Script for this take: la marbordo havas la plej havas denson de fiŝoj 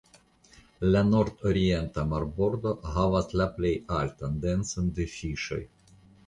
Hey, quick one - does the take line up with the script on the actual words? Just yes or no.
no